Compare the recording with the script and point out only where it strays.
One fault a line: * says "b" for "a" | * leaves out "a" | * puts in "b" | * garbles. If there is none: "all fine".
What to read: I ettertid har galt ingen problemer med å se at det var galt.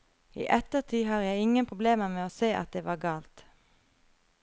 * says "jeg" for "galt"